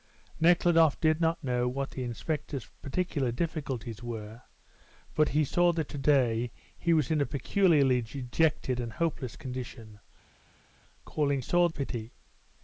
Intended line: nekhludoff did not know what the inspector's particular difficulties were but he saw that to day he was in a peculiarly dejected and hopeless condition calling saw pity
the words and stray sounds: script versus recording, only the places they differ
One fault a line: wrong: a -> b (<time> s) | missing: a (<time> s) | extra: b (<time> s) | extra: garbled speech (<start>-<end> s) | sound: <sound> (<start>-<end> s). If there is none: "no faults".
no faults